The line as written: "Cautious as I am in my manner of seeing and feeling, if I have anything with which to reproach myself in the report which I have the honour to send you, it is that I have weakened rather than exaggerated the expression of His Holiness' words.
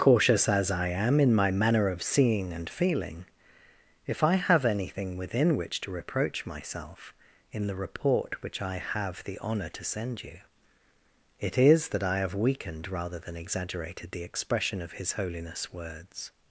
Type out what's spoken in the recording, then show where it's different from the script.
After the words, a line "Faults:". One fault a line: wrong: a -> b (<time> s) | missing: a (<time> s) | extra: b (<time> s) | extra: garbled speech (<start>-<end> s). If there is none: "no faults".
"Cautious as I am in my manner of seeing and feeling, if I have anything within which to reproach myself in the report which I have the honour to send you, it is that I have weakened rather than exaggerated the expression of His Holiness' words.
Faults:
wrong: with -> within (5.2 s)